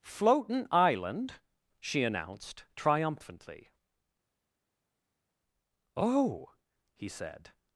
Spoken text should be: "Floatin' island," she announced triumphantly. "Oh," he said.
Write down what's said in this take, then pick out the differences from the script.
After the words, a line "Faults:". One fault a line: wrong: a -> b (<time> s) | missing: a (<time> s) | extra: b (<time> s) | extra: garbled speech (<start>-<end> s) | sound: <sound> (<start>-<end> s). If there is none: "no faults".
"Floatin' island," she announced triumphantly. "Oh," he said.
Faults:
no faults